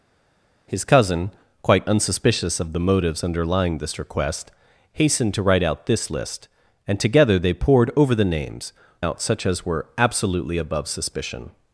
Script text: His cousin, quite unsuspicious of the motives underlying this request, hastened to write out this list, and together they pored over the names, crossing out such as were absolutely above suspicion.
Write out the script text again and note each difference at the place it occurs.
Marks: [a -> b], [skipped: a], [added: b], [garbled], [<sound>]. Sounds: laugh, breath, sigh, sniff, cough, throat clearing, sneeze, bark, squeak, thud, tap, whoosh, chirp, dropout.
His cousin, quite unsuspicious of the motives underlying this request, hastened to write out this list, and together they pored over the names, [skipped: crossing] out such as were absolutely above suspicion.